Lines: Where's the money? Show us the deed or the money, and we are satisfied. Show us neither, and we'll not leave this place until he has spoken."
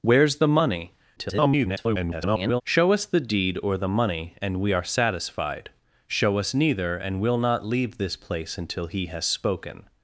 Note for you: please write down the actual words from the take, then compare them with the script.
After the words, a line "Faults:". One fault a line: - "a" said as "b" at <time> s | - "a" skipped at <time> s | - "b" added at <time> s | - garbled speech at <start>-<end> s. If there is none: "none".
Where's the money? [garbled] Show us the deed or the money, and we are satisfied. Show us neither, and we'll not leave this place until he has spoken."
Faults:
- garbled speech at 1.2-2.6 s